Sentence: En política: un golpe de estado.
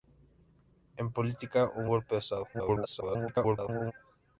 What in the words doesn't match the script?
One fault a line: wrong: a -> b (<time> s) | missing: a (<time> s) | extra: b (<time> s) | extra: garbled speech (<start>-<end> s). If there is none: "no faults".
extra: garbled speech (2.5-3.9 s)